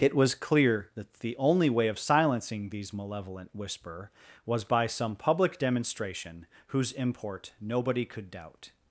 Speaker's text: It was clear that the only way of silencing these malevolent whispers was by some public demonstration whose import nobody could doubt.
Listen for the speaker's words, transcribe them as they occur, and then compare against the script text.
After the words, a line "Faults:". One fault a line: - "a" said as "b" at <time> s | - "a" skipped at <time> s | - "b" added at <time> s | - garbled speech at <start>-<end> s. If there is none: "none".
It was clear that the only way of silencing these malevolent whisper was by some public demonstration whose import nobody could doubt.
Faults:
- "whispers" said as "whisper" at 3.5 s